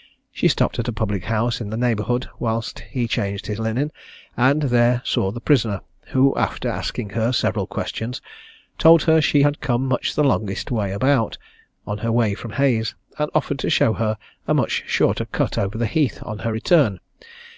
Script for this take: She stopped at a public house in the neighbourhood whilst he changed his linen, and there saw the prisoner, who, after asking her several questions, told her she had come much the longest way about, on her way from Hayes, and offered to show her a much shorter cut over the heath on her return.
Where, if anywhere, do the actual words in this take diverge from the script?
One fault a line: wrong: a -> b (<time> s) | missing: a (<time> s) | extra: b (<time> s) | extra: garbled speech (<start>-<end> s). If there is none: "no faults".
no faults